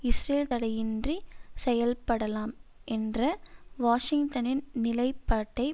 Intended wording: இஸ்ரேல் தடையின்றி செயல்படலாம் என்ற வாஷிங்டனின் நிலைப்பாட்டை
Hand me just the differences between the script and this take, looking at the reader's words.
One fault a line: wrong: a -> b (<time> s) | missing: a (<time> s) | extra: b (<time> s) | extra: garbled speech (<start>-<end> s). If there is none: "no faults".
no faults